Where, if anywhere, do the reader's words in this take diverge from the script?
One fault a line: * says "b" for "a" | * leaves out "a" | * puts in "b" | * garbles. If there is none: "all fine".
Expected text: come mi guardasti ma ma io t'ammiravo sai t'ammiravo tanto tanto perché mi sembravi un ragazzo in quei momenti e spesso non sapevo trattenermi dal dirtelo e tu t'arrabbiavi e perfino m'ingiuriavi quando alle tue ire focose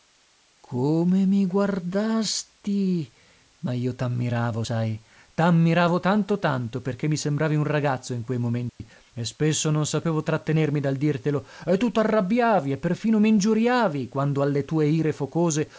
* leaves out "ma"